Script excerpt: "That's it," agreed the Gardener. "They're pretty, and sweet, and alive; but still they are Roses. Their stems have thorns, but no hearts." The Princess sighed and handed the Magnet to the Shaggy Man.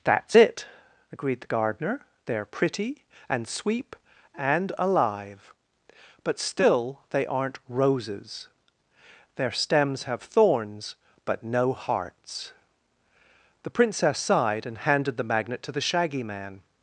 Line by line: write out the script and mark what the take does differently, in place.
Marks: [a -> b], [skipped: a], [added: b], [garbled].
"That's it," agreed the Gardener. "They're pretty, and [sweet, -> sweep] and alive; but still they [are -> aren't] Roses. Their stems have thorns, but no hearts." The Princess sighed and handed the Magnet to the Shaggy Man.